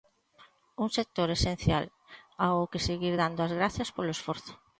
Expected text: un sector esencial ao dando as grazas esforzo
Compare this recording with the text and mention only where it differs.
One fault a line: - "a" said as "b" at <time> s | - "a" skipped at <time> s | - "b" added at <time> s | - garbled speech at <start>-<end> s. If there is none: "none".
- "que seguir" added at 2.7 s
- "polo" added at 3.9 s